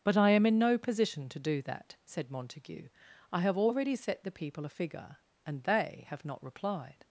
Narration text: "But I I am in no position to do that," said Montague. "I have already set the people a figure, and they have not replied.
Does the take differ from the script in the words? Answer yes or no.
yes